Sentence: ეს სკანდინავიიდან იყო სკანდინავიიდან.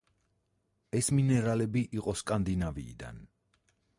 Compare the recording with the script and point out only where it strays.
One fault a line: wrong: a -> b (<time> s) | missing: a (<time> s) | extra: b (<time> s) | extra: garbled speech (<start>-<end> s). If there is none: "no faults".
wrong: სკანდინავიიდან -> მინერალები (1.2 s)